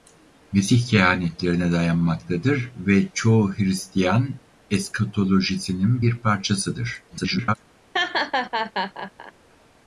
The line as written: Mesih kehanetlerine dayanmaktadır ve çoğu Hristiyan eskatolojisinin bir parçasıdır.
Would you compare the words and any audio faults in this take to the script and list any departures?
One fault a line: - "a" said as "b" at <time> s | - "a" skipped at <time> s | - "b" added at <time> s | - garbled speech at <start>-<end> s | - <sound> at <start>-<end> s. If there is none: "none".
- garbled speech at 7.1-7.5 s
- laugh at 7.9-9.3 s